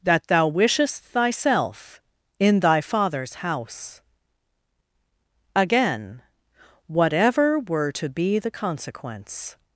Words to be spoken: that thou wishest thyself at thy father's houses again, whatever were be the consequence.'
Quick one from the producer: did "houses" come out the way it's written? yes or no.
no